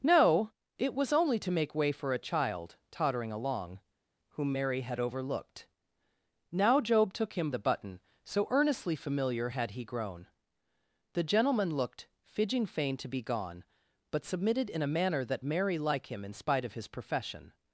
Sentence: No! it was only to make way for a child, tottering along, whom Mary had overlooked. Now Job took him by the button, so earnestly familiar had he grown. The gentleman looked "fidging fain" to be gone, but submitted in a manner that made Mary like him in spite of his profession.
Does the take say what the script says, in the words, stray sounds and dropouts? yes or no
no